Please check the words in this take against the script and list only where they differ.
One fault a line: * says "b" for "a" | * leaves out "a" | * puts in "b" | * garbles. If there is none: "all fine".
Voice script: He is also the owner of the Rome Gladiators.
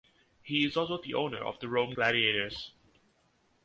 all fine